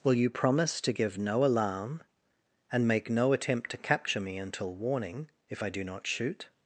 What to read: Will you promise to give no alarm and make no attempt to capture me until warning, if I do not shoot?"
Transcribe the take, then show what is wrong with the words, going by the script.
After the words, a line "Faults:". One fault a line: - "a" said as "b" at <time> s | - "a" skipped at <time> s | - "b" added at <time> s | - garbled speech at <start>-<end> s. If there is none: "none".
Will you promise to give no alarm and make no attempt to capture me until warning, if I do not shoot?"
Faults:
none